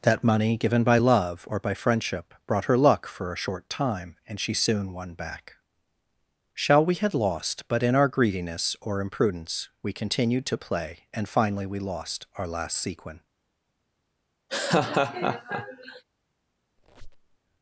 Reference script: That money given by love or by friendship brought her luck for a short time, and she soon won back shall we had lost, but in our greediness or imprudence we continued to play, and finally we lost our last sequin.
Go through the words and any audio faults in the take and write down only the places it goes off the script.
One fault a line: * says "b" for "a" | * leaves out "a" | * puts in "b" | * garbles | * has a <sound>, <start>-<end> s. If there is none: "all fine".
* has a laugh, 14.5-16.0 s
* has a squeak, 16.8-17.4 s